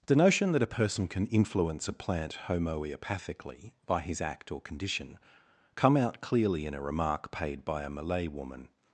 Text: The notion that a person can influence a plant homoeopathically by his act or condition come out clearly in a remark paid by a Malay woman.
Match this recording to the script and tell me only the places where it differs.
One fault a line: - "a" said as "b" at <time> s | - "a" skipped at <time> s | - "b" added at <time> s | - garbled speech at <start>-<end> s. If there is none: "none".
none